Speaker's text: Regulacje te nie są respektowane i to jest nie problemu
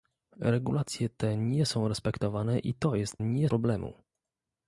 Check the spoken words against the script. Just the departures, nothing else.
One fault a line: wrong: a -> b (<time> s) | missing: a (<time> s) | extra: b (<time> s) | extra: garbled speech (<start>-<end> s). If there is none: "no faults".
no faults